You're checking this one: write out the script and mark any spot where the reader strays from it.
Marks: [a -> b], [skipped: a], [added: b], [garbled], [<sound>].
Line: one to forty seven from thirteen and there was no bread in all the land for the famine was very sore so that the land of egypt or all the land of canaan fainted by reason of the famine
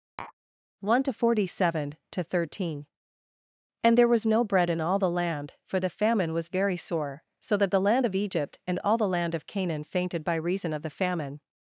[tap] one to forty seven [from -> to] thirteen and there was no bread in all the land for the famine was very sore so that the land of egypt [or -> and] all the land of canaan fainted by reason of the famine